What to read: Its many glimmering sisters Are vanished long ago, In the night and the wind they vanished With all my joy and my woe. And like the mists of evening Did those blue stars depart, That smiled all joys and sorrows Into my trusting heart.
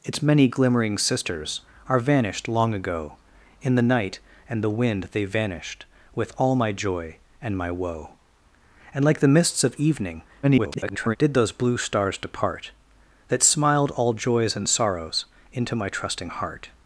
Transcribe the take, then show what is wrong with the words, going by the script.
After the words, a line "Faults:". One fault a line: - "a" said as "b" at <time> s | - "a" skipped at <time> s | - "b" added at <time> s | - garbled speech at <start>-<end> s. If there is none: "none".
Its many glimmering sisters Are vanished long ago, In the night and the wind they vanished With all my joy and my woe. And like the mists of evening [garbled] Did those blue stars depart, That smiled all joys and sorrows Into my trusting heart.
Faults:
- garbled speech at 10.4-11.2 s